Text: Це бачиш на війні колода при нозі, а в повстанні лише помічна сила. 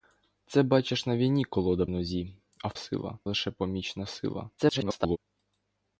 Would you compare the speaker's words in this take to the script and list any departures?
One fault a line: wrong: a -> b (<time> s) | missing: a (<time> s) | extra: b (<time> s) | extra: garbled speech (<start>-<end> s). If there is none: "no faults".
missing: при (1.9 s)
wrong: повстанні -> сила (2.7 s)
extra: garbled speech (4.6-5.2 s)